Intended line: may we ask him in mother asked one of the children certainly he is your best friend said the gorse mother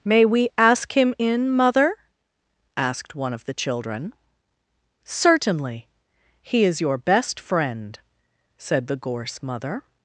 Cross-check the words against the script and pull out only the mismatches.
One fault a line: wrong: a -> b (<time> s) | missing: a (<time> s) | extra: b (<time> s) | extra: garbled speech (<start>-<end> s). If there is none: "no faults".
no faults